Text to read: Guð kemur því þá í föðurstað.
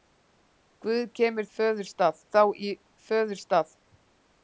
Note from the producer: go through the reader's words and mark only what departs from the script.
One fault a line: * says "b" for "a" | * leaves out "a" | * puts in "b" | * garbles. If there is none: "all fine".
* says "föðurstað" for "því"